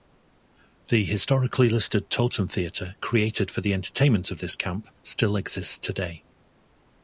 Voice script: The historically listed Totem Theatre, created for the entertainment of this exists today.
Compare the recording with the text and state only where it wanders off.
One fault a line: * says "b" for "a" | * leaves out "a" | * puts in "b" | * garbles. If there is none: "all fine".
* puts in "camp still"